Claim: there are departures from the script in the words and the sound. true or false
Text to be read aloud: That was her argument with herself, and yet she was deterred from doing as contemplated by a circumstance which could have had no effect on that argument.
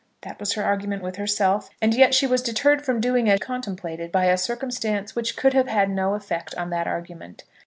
false